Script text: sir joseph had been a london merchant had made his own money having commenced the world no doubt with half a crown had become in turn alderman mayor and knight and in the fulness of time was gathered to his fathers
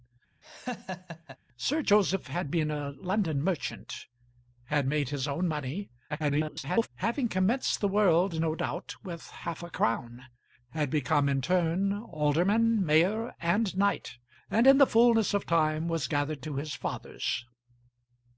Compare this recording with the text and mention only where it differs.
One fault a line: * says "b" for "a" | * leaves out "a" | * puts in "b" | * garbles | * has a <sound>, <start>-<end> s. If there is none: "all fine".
* has a laugh, 0.4-1.4 s
* garbles